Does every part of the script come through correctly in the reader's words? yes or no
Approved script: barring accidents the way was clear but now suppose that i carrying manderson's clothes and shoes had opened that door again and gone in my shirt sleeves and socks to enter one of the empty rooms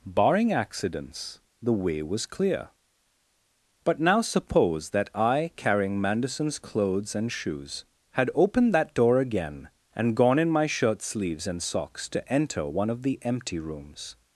yes